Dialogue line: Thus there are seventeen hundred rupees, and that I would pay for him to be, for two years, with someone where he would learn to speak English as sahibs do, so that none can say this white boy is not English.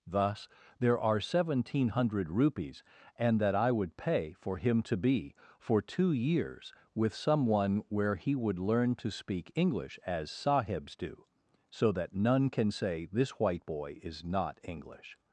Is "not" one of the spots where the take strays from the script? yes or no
no